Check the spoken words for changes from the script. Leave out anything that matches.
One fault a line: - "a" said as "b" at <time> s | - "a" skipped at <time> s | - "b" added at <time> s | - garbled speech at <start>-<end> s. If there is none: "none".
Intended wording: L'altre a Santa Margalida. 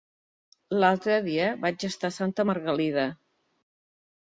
- "dia vaig estar" added at 1.3 s